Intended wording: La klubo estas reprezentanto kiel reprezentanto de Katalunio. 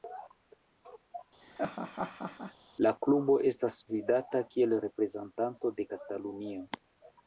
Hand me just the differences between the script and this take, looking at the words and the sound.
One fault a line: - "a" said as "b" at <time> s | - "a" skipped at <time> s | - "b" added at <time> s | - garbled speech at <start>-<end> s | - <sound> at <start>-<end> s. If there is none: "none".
- laugh at 1.4-2.5 s
- "reprezentanto" said as "vidata" at 3.9 s